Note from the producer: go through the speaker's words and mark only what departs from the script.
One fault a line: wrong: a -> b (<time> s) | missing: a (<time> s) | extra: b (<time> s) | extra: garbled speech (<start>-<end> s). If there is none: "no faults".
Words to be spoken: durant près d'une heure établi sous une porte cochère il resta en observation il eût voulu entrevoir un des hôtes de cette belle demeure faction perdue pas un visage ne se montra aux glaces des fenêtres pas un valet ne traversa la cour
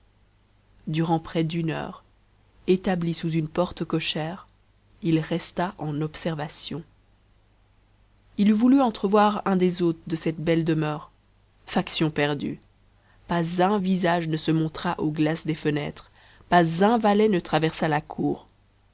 no faults